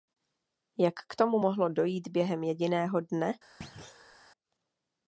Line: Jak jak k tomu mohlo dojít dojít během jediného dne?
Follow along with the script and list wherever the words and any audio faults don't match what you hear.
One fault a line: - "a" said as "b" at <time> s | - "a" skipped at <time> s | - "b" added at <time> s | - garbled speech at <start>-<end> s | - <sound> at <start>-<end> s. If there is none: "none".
- "jak" skipped at 0.9 s
- "dojít" skipped at 2.1 s
- thud at 3.6-4.2 s